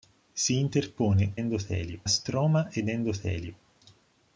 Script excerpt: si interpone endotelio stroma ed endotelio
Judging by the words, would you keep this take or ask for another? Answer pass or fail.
pass